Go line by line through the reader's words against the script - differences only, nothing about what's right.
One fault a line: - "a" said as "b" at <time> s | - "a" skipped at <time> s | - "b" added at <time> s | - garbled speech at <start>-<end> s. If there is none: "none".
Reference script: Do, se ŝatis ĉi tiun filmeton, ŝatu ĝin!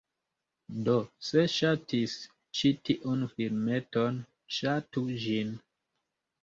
none